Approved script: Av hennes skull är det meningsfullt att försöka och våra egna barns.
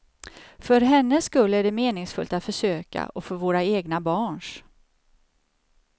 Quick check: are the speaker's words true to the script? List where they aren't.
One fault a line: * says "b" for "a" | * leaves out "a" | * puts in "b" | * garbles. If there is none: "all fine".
* says "För" for "Av"
* puts in "för"